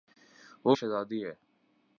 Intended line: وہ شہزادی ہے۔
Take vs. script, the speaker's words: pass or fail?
pass